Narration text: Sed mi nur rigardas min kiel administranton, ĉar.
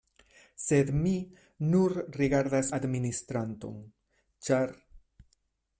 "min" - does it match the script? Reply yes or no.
no